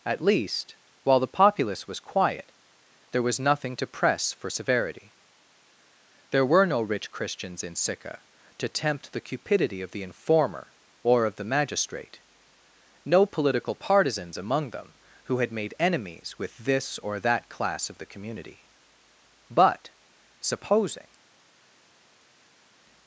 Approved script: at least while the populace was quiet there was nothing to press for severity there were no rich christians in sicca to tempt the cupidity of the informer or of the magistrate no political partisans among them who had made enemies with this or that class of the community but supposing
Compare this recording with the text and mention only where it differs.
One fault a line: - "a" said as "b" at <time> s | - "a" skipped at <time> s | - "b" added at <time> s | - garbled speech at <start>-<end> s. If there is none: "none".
none